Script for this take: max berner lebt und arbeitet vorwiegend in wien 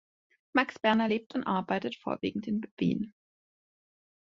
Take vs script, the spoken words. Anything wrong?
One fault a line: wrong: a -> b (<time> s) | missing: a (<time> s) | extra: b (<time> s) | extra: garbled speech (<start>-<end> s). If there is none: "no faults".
no faults